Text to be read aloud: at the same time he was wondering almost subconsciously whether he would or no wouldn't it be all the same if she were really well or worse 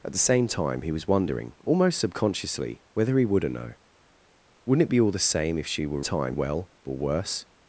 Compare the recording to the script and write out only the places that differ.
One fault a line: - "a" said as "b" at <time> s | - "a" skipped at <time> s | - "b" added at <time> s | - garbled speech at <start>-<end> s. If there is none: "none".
- "really" said as "time" at 6.0 s